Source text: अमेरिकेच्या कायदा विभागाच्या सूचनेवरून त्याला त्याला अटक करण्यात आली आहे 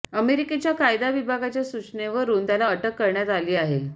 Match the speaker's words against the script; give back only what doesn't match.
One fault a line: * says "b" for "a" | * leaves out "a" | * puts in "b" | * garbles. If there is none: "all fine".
* leaves out "त्याला"